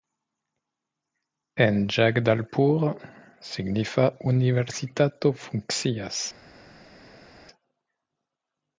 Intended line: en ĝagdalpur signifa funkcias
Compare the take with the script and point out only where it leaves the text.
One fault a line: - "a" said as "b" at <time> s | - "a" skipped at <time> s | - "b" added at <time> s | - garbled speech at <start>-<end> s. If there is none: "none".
- "universitato" added at 4.3 s